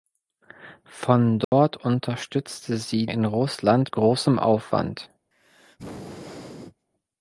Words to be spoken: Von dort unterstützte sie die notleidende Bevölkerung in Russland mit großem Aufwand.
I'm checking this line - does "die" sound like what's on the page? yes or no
no